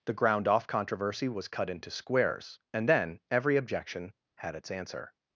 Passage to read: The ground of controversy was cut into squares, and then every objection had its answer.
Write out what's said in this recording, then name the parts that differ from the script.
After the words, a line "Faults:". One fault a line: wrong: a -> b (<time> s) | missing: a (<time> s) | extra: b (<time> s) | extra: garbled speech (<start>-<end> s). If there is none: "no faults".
The ground off controversy was cut into squares, and then every objection had its answer.
Faults:
wrong: of -> off (0.5 s)